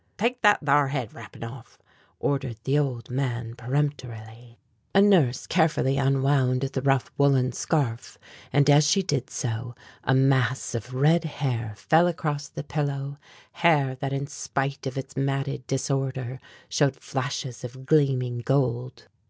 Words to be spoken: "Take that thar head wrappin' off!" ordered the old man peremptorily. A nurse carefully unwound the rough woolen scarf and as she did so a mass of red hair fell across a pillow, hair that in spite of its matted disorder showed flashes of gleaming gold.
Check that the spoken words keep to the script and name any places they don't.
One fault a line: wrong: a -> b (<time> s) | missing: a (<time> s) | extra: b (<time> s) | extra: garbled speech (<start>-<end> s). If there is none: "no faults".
wrong: a -> the (12.5 s)